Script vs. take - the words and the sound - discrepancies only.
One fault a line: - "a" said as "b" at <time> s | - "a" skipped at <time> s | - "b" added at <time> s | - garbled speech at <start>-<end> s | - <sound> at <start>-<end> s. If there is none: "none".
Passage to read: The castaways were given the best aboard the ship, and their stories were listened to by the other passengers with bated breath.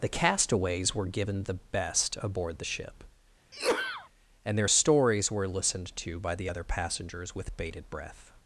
- sneeze at 3.5-4.1 s